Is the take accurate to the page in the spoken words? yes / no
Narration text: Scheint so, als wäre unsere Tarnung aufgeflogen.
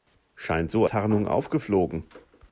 no